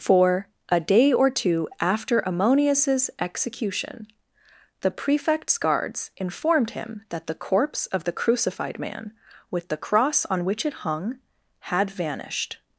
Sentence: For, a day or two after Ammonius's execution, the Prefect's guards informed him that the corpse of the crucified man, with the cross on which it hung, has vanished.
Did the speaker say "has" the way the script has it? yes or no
no